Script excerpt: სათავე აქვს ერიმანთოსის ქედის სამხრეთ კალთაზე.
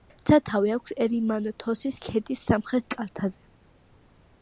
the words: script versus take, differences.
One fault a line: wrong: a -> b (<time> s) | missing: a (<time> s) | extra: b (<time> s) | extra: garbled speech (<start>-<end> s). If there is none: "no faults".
no faults